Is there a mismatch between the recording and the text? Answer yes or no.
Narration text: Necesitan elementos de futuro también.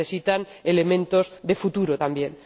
no